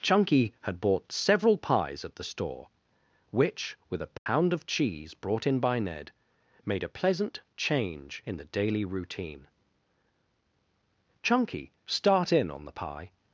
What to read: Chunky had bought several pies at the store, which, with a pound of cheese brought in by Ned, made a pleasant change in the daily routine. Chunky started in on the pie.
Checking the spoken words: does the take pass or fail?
fail